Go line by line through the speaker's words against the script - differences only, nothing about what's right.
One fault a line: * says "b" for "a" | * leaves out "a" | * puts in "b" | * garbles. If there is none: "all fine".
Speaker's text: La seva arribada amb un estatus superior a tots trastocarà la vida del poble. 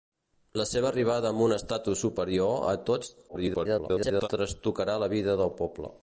* garbles